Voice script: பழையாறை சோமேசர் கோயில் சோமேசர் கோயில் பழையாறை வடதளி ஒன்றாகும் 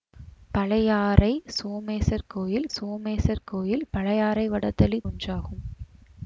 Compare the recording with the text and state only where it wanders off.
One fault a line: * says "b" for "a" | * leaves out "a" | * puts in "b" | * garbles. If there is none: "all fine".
all fine